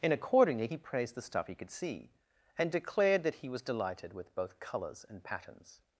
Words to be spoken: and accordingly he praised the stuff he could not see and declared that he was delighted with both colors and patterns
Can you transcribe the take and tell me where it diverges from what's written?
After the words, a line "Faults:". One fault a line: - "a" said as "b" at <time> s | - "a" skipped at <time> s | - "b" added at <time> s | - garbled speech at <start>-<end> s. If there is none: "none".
and accordingly he praised the stuff he could see and declared that he was delighted with both colors and patterns
Faults:
- "not" skipped at 1.7 s